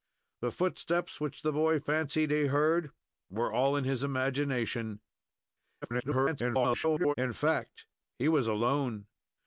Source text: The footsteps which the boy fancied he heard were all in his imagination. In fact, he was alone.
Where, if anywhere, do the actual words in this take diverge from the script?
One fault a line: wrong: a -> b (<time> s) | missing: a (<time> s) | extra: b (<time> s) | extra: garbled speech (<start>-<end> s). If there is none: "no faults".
extra: garbled speech (5.8-7.1 s)